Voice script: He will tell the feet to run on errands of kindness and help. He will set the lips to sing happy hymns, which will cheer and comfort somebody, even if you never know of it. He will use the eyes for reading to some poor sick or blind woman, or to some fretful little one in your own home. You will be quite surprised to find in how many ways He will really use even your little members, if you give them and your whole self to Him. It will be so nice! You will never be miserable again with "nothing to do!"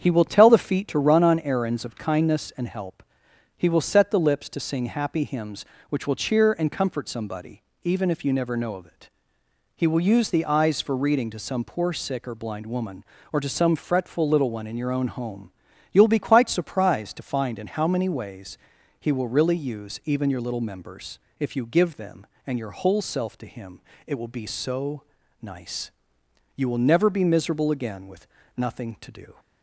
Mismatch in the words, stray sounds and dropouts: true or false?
false